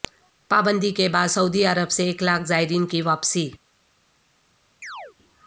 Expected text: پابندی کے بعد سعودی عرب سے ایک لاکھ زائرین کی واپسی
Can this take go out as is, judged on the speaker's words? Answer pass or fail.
pass